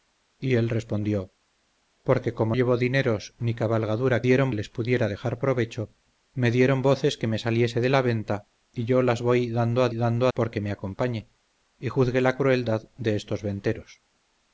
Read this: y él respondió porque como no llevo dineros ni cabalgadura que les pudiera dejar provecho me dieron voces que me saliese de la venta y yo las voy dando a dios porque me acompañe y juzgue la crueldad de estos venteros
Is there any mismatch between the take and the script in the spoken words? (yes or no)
yes